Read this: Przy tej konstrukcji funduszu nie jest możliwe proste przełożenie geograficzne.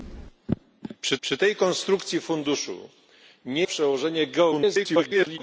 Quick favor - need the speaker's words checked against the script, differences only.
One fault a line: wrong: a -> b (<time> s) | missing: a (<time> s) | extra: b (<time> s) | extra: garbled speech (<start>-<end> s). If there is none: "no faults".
extra: przy (1.2 s)
missing: jest możliwe proste (3.7 s)
extra: garbled speech (4.5-5.4 s)